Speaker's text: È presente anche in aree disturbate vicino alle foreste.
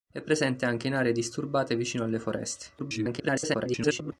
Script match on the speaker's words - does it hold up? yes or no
no